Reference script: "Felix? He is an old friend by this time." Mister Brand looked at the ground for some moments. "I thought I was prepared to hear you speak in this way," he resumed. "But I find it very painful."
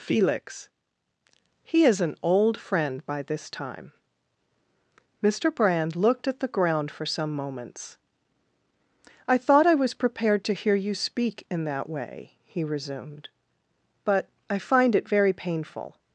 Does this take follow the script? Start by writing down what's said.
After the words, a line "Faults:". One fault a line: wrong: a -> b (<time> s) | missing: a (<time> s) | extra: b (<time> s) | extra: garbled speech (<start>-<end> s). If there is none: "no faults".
"Felix? He is an old friend by this time." Mister Brand looked at the ground for some moments. "I thought I was prepared to hear you speak in that way," he resumed. "But I find it very painful."
Faults:
wrong: this -> that (11.7 s)